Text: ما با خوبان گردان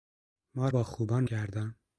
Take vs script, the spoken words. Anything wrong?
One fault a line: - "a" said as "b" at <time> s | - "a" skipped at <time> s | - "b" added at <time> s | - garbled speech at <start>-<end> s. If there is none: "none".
none